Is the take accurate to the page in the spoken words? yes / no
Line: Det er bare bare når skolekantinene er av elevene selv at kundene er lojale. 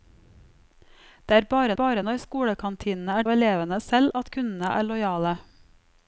yes